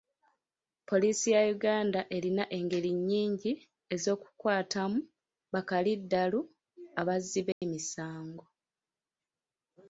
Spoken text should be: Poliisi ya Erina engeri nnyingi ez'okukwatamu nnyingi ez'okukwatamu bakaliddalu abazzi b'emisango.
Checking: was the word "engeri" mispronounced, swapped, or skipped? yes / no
no